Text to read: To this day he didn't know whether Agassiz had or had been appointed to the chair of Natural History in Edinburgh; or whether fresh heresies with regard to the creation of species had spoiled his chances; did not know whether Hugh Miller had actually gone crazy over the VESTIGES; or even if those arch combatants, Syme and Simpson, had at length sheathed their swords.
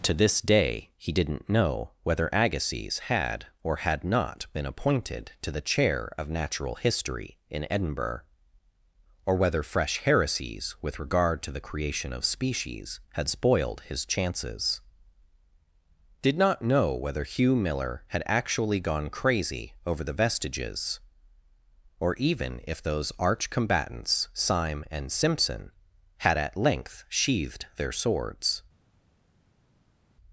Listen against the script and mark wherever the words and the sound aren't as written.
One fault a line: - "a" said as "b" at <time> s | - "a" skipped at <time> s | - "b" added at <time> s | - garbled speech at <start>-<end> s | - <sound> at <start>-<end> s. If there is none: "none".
- "not" added at 4.0 s